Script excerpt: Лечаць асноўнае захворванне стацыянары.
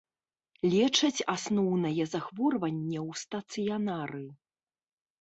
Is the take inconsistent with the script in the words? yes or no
yes